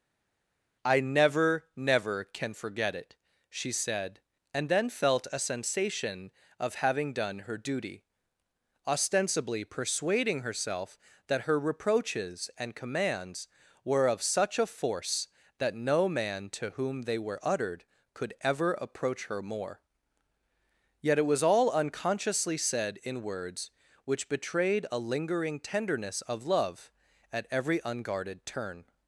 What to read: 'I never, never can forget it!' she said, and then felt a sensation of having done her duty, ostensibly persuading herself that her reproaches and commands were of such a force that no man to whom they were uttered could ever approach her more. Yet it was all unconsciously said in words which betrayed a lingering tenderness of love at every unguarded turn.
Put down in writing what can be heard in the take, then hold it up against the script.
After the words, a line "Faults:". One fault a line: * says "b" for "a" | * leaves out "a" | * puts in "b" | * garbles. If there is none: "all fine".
'I never, never can forget it!' she said, and then felt a sensation of having done her duty, ostensibly persuading herself that her reproaches and commands were of such a force that no man to whom they were uttered could ever approach her more. Yet it was all unconsciously said in words which betrayed a lingering tenderness of love at every unguarded turn.
Faults:
all fine